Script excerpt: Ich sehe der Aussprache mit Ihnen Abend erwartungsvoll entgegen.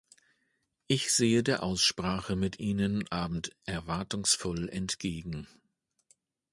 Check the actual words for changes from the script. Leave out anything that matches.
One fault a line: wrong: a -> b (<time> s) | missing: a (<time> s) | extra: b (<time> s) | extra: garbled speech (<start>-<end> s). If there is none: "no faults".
no faults